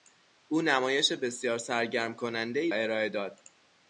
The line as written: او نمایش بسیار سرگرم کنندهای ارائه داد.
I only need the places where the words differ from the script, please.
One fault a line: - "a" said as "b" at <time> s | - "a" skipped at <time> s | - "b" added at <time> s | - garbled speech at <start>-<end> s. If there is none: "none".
none